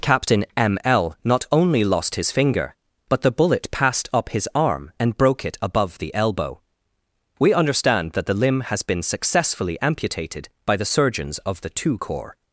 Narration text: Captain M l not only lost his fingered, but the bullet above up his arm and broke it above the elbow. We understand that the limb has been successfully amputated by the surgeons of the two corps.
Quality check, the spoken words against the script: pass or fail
fail